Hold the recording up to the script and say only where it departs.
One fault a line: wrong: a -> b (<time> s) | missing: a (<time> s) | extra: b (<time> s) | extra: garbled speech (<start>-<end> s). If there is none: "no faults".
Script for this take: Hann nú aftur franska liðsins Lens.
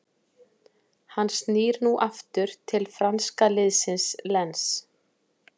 extra: snýr (1.4 s)
extra: til (2.7 s)